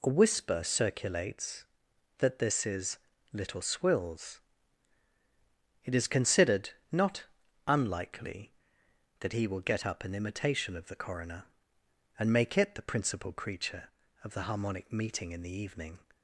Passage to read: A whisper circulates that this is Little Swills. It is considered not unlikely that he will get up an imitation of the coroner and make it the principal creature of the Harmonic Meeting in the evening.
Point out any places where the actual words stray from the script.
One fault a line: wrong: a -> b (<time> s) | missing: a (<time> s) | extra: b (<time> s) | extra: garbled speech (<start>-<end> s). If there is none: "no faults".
no faults